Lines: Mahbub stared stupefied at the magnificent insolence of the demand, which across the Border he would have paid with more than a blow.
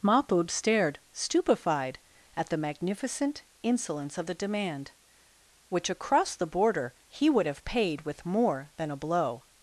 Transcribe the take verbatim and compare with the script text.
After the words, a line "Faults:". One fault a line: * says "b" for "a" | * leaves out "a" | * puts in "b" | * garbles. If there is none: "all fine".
Mahbub stared stupefied at the magnificent insolence of the demand, which across the Border he would have paid with more than a blow.
Faults:
all fine